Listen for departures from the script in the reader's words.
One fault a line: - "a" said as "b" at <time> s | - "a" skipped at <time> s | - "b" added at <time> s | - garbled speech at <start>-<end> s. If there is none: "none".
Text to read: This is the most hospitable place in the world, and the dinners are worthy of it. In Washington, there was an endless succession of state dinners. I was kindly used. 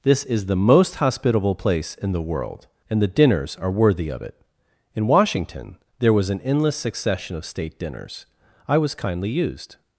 none